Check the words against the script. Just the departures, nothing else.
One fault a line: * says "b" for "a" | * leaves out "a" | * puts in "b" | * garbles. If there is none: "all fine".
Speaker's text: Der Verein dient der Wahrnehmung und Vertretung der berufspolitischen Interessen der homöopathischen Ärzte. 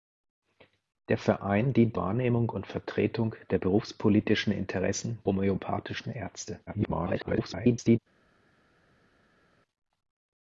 * leaves out "der"
* leaves out "der"
* garbles